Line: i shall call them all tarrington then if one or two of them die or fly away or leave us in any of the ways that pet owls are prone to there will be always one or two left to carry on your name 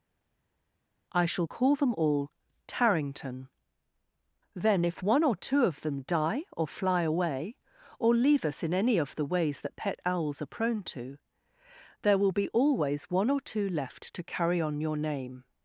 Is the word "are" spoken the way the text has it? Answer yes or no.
yes